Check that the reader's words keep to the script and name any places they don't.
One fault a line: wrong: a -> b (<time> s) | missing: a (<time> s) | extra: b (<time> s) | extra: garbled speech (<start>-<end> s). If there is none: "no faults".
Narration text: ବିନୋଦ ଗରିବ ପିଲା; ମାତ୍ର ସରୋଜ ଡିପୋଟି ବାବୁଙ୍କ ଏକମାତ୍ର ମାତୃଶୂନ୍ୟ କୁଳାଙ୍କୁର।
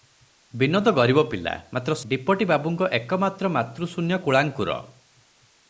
missing: ସରୋଜ (2.0 s)